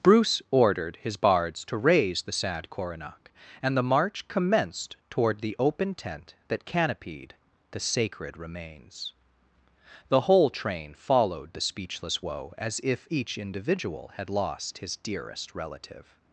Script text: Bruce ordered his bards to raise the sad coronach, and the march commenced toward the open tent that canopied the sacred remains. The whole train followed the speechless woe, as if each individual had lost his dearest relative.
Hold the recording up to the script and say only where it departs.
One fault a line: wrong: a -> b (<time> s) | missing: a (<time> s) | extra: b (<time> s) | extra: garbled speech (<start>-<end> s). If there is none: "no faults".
no faults